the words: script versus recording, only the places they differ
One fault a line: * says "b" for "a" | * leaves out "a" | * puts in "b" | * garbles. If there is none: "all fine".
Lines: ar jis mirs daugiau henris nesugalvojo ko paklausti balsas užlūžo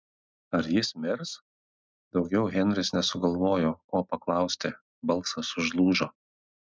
all fine